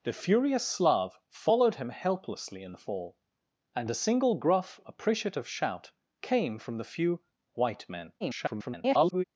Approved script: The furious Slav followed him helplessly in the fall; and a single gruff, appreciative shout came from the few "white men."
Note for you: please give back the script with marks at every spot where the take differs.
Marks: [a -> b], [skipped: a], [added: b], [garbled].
The furious Slav followed him helplessly in the fall; and a single gruff, appreciative shout came from the few "white men." [garbled]